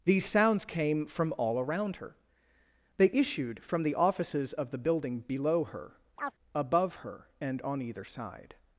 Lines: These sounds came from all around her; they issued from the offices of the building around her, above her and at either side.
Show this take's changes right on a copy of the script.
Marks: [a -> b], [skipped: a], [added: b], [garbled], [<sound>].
These sounds came from all around her; they issued from the offices of the building [around -> below] her, [chirp] above her and [at -> on] either side.